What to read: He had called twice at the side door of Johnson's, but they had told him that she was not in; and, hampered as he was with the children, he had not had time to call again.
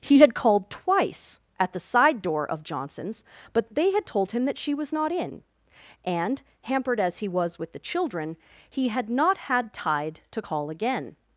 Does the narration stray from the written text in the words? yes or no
yes